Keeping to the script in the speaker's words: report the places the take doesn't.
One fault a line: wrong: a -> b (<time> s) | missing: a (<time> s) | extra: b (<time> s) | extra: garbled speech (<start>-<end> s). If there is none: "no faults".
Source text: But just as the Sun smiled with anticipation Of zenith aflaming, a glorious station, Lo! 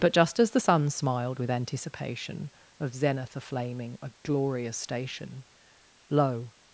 no faults